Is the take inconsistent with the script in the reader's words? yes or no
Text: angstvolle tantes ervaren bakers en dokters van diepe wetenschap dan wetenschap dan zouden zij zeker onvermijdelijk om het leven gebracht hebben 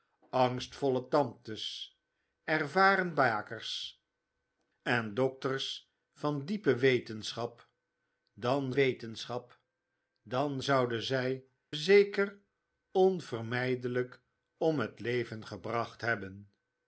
no